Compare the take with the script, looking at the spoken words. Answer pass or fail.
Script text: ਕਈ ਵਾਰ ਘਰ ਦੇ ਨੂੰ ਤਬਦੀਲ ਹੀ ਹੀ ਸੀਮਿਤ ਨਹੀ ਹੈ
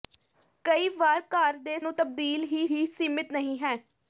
pass